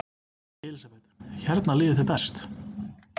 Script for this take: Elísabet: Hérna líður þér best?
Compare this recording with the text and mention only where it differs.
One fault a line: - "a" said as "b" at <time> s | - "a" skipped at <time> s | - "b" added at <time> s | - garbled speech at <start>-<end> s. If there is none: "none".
none